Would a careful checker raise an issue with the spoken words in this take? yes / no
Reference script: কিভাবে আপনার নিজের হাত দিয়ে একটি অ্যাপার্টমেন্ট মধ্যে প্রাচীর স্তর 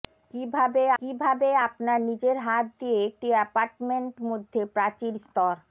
yes